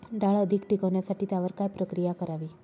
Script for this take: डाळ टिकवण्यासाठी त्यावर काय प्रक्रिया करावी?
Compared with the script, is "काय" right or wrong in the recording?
right